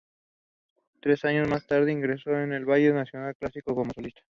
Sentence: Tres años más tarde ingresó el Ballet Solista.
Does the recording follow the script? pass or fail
fail